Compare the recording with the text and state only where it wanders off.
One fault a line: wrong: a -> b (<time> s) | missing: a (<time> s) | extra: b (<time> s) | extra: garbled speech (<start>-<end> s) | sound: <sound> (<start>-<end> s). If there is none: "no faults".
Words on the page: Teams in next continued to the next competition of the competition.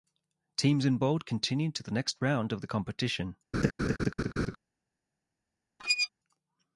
wrong: next -> bold (1.0 s)
wrong: competition -> round (2.2 s)
sound: laugh (3.5-4.6 s)
sound: squeak (5.8-6.1 s)